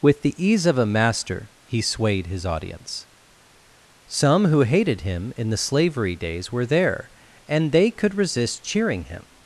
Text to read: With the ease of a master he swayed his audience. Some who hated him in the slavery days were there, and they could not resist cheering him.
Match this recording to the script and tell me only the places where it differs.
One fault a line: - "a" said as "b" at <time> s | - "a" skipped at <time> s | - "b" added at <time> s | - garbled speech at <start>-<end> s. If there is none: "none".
- "not" skipped at 8.2 s